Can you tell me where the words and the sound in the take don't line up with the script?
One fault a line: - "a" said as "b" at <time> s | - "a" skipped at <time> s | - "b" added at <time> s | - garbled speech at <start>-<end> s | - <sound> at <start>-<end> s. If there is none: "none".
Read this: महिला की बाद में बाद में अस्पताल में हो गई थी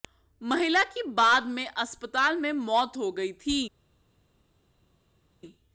- "बाद" said as "अस्पताल" at 1.7 s
- "अस्पताल में" said as "मौत" at 2.5 s